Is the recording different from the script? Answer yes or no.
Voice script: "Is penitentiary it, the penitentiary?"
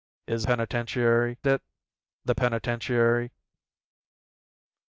no